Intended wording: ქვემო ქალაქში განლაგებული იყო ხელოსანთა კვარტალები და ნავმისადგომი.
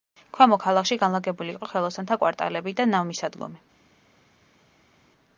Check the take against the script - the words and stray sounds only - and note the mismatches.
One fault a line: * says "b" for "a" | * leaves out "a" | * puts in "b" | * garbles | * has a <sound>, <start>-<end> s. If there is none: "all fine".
all fine